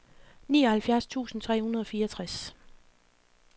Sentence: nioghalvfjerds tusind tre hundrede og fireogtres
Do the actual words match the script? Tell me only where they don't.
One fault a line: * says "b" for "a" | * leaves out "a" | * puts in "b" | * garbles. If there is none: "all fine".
all fine